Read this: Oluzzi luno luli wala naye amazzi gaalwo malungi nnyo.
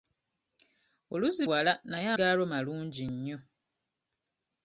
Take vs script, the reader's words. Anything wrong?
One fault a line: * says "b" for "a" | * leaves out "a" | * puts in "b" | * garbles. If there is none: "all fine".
* leaves out "luno luli"
* leaves out "amazzi"